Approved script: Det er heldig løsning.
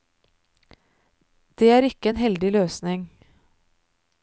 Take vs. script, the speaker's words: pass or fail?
fail